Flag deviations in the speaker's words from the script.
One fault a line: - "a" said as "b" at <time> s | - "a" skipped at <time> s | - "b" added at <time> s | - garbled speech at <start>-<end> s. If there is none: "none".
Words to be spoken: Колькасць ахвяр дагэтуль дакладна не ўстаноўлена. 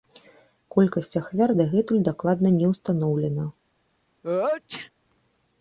none